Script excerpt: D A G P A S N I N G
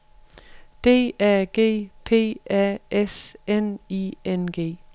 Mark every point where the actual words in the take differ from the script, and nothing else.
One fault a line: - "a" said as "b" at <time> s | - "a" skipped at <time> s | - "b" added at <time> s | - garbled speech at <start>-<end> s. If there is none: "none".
none